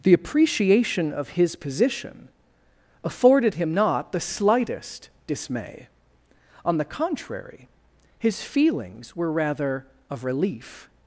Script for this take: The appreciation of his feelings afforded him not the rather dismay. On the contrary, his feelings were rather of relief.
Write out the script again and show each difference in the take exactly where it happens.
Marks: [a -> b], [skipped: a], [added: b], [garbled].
The appreciation of his [feelings -> position] afforded him not the [rather -> slightest] dismay. On the contrary, his feelings were rather of relief.